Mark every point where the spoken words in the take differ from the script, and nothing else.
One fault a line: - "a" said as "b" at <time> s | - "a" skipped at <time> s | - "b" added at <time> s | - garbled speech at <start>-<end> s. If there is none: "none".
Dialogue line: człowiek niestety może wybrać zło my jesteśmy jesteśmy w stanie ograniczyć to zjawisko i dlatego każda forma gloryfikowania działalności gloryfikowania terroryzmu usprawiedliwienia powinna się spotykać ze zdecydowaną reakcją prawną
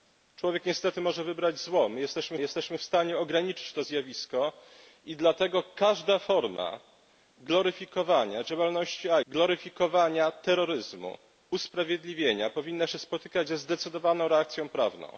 none